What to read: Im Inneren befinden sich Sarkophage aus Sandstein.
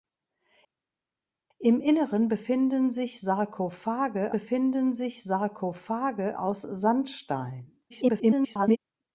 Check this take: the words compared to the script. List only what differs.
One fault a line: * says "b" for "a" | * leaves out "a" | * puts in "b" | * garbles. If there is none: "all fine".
* puts in "befinden sich Sarkophage"
* garbles